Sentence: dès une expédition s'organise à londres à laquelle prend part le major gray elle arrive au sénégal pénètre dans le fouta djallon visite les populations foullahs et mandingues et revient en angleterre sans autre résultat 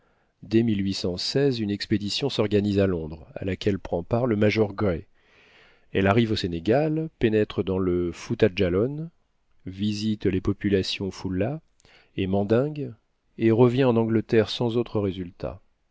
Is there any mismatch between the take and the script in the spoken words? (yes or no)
no